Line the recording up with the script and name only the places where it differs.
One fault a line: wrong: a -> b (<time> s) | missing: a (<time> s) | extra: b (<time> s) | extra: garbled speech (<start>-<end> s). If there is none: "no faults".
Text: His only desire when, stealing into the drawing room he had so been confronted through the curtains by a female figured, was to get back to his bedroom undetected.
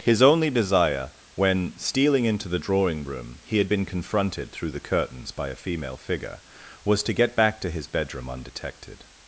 missing: so (3.7 s)
wrong: figured -> figure (6.0 s)